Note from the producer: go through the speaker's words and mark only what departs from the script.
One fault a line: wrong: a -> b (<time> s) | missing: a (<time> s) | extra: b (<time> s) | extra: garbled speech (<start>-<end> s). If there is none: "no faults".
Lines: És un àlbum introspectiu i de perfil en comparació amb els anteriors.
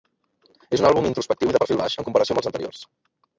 extra: baix (1.8 s)